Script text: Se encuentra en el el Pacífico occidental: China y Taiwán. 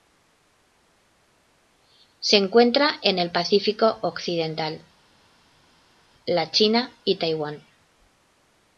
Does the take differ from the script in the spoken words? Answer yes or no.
yes